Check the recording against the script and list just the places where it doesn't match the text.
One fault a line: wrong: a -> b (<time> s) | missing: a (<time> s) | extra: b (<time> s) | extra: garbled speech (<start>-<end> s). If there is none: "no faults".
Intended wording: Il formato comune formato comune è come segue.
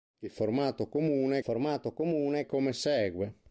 no faults